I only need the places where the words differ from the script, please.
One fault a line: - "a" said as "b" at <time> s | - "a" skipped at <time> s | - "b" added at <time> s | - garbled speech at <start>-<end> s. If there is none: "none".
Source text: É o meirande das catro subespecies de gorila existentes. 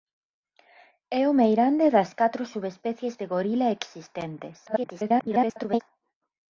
- garbled speech at 4.7-5.8 s